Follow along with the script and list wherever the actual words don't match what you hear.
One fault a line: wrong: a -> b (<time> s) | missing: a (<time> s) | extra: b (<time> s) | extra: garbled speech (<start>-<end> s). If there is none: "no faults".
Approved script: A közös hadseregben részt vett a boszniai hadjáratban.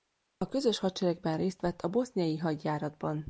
no faults